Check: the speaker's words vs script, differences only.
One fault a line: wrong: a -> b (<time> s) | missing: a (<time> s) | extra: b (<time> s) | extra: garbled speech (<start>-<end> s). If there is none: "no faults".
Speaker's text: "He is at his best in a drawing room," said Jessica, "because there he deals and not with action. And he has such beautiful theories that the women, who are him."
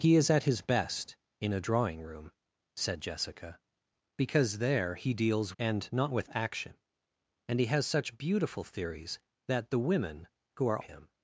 no faults